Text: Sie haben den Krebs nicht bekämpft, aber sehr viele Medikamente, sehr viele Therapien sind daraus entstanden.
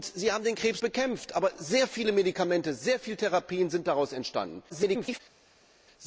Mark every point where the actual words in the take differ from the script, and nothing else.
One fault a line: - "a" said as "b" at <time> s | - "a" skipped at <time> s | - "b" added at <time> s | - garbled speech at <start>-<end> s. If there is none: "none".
- "nicht" skipped at 0.8 s
- garbled speech at 4.7-5.2 s